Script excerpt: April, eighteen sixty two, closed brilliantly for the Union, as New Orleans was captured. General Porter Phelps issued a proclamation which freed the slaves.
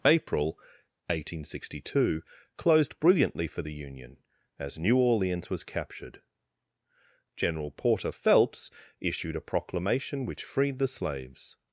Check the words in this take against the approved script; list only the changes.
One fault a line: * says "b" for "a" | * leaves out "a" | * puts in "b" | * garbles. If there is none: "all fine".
all fine